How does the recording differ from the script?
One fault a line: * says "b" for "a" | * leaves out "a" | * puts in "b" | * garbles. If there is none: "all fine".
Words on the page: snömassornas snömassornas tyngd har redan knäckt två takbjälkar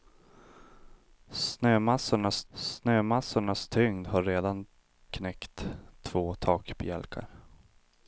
all fine